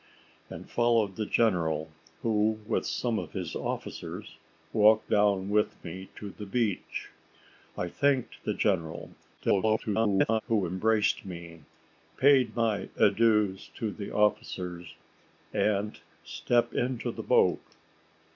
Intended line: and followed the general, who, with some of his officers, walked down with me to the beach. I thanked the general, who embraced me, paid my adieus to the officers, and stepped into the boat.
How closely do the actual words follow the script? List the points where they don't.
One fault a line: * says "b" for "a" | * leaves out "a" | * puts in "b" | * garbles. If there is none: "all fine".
* garbles